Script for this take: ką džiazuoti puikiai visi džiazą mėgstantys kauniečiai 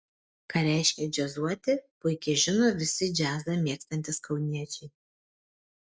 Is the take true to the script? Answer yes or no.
no